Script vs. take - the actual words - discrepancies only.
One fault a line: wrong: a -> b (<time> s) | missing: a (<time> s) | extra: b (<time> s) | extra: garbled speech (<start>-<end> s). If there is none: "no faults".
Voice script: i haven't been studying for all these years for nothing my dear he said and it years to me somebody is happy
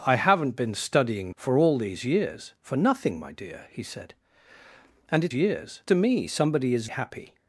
no faults